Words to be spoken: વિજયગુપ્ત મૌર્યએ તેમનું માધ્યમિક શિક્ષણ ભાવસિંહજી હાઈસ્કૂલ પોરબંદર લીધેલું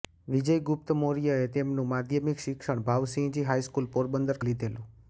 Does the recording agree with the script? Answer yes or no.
yes